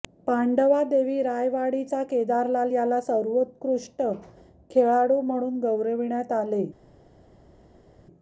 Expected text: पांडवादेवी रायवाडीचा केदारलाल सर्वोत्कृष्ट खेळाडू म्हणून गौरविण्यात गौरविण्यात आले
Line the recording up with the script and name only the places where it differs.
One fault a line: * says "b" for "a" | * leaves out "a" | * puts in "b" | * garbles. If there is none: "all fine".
* puts in "याला"
* leaves out "गौरविण्यात"